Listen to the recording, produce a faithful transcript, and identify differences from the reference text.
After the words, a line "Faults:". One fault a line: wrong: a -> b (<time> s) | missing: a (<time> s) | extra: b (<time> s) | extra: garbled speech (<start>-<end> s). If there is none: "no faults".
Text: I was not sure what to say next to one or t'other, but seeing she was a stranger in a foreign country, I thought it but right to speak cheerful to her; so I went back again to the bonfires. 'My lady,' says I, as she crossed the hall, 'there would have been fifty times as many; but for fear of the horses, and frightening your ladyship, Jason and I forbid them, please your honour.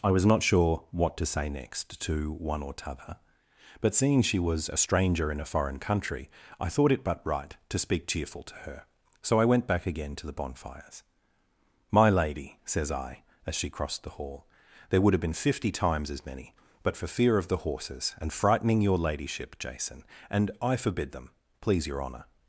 I was not sure what to say next to one or t'other, but seeing she was a stranger in a foreign country, I thought it but right to speak cheerful to her; so I went back again to the bonfires. 'My lady,' says I, as she crossed the hall, 'there would have been fifty times as many; but for fear of the horses, and frightening your ladyship, Jason and I forbid them, please your honour.
Faults:
no faults